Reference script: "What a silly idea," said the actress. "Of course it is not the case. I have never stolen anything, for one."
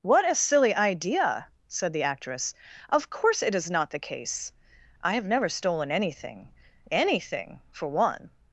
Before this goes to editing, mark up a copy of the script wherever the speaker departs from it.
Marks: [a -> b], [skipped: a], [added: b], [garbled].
"What a silly idea," said the actress. "Of course it is not the case. I have never stolen anything, [added: anything] for one."